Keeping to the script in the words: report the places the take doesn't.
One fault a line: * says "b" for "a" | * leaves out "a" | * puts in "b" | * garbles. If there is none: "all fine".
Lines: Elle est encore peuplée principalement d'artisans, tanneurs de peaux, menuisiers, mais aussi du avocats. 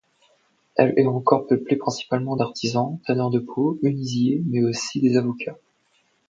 * says "des" for "du"